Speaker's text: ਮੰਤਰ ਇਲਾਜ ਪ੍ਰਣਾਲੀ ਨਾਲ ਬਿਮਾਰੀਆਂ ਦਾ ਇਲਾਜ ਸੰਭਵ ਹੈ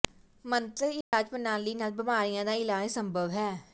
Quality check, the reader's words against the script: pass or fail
pass